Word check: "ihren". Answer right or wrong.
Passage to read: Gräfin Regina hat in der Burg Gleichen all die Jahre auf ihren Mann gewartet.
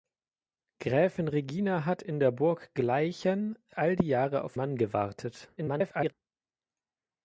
wrong